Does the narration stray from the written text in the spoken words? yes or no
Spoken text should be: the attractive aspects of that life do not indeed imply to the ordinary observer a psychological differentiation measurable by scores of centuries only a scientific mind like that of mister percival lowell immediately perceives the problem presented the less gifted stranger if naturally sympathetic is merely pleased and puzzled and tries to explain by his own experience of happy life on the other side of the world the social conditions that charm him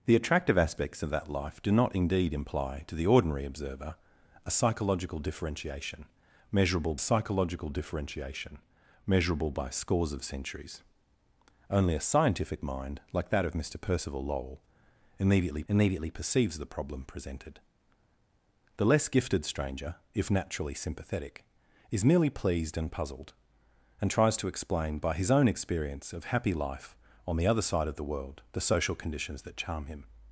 yes